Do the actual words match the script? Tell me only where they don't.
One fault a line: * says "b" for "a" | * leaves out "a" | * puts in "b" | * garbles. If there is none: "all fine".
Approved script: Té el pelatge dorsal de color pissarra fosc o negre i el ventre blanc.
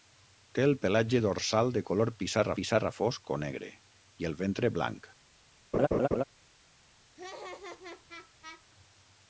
* puts in "pissarra"